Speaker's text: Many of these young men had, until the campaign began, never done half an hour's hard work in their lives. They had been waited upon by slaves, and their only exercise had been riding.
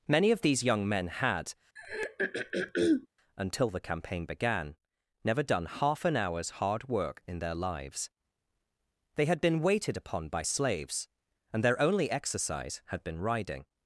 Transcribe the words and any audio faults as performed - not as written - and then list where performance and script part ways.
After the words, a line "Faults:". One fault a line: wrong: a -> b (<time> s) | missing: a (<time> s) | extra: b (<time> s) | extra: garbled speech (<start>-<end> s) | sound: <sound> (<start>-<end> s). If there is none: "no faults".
Many of these young men had, until the campaign began, never done half an hour's hard work in their lives. They had been waited upon by slaves, and their only exercise had been riding.
Faults:
sound: throat clearing (1.8-3.1 s)